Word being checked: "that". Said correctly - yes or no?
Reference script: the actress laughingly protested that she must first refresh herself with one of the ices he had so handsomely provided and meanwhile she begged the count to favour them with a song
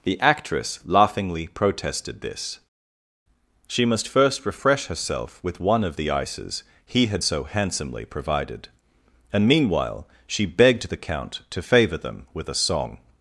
no